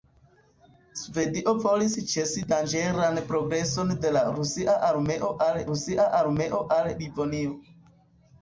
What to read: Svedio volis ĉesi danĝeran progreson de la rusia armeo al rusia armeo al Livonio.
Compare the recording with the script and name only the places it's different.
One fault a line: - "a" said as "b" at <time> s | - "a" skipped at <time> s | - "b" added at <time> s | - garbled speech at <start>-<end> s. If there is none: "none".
none